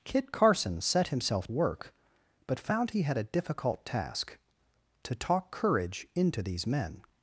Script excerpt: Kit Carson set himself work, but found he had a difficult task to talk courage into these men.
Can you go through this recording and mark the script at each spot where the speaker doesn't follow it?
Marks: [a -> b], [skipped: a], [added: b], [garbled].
Kit Carson set himself work, but found he had a difficult task to talk courage into these men.